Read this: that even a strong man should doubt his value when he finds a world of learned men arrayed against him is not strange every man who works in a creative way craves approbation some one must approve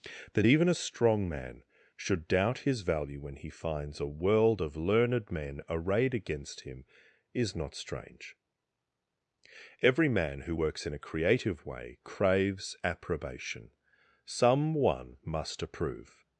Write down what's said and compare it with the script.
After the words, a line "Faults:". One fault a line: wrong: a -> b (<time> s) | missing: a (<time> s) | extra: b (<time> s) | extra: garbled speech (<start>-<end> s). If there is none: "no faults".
that even a strong man should doubt his value when he finds a world of learned men arrayed against him is not strange every man who works in a creative way craves approbation some one must approve
Faults:
no faults